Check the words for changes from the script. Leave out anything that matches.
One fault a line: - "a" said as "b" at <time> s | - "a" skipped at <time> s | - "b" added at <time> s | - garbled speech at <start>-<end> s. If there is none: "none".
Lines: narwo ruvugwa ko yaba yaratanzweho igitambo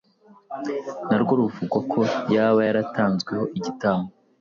none